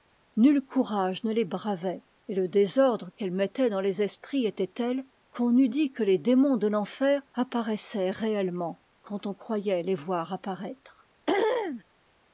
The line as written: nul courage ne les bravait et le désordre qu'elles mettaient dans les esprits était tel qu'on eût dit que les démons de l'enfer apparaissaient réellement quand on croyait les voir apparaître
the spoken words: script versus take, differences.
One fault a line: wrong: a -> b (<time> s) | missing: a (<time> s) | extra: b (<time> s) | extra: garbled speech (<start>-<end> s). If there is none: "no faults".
no faults